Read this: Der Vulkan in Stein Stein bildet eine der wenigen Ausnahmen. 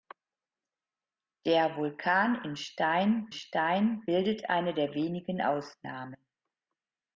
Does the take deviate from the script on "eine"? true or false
false